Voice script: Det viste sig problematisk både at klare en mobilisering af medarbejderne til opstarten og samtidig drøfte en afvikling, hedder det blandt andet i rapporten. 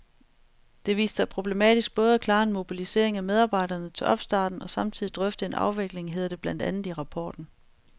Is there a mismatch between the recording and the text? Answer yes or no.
no